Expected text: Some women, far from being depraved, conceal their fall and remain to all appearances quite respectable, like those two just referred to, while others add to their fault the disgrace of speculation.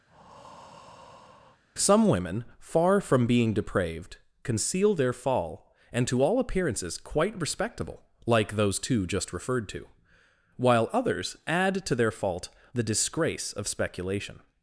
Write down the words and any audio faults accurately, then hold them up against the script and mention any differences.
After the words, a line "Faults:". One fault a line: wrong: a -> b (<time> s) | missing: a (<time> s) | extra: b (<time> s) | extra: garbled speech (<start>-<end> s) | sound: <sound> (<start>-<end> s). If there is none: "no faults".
Some women, far from being depraved, conceal their fall and to all appearances quite respectable, like those two just referred to, while others add to their fault the disgrace of speculation.
Faults:
sound: breath (0.1-1.6 s)
missing: remain (6.1 s)